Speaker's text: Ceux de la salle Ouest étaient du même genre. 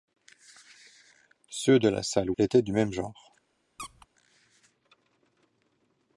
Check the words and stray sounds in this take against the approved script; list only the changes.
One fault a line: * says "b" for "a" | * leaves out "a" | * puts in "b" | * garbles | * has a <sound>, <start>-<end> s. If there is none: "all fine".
* leaves out "Ouest"
* has a squeak, 3.8-4.1 s